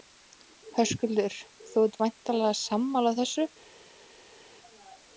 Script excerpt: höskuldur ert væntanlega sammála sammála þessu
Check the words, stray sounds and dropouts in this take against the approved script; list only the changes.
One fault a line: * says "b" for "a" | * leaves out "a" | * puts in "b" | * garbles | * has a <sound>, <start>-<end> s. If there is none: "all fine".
* puts in "þú"
* leaves out "sammála"